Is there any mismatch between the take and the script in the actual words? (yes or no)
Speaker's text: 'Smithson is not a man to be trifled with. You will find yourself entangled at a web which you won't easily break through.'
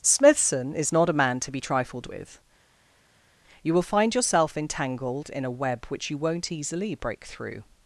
yes